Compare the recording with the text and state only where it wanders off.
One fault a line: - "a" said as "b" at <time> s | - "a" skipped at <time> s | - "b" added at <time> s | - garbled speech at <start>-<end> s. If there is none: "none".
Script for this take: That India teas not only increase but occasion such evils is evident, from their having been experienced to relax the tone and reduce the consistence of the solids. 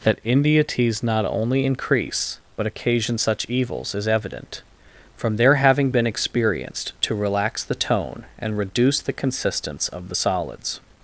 none